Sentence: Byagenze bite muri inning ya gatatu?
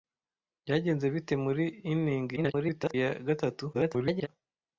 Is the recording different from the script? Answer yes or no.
yes